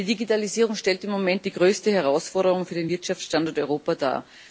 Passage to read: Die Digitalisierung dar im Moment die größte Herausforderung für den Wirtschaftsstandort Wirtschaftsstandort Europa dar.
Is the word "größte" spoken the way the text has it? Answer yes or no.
yes